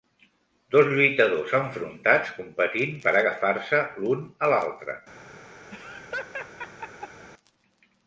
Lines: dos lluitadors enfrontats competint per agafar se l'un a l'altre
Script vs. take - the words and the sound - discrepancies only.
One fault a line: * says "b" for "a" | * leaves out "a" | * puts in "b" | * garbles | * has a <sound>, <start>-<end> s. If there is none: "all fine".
* has a laugh, 5.7-7.3 s